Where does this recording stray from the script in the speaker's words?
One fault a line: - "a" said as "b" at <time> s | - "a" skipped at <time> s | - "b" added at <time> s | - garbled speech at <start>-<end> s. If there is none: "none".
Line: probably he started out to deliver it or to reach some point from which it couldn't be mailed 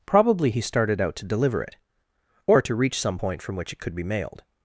- "couldn't" said as "could" at 3.8 s